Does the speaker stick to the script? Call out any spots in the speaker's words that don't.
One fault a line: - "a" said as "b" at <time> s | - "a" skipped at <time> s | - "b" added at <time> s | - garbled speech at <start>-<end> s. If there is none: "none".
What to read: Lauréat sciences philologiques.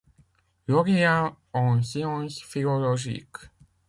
- "en" added at 1.5 s